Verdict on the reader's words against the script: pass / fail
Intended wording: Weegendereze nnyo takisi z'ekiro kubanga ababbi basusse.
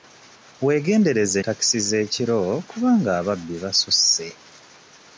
fail